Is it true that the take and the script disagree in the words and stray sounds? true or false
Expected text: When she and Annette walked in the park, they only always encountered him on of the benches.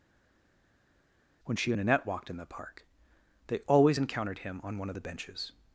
true